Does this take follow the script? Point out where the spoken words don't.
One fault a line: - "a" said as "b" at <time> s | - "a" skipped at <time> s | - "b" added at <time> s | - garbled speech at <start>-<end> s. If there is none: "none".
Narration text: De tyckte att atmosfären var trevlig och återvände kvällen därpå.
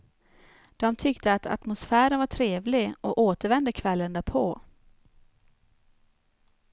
none